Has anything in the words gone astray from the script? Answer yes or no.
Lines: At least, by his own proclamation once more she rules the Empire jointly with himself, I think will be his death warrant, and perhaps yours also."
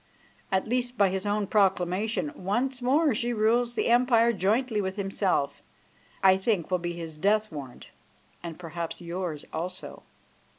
no